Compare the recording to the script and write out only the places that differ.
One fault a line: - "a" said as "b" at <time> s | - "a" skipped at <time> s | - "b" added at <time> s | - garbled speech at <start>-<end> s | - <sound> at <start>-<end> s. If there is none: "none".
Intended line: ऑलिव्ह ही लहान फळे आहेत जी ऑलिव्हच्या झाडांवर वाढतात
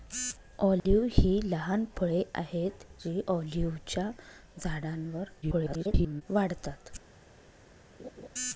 - dropout at 0.8-0.9 s
- garbled speech at 5.4-6.2 s
- laugh at 8.0-8.3 s